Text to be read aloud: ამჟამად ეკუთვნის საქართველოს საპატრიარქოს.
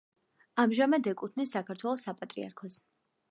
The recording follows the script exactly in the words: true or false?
true